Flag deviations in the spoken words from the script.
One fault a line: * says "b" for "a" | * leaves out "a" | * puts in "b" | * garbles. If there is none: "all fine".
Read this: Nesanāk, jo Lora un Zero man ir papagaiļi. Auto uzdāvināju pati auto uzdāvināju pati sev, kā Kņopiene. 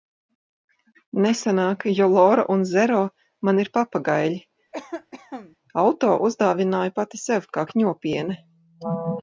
* leaves out "auto uzdāvināju pati"